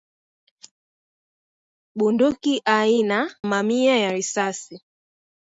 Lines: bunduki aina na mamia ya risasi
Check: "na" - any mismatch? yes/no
yes